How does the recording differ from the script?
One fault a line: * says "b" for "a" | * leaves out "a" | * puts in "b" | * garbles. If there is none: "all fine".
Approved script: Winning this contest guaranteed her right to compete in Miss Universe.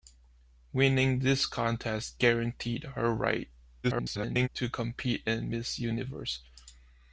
* garbles